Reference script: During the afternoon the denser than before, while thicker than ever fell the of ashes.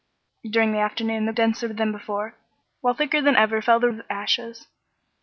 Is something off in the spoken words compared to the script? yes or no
no